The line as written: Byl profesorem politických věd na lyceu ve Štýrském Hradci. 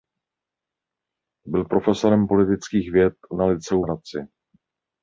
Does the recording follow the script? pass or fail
fail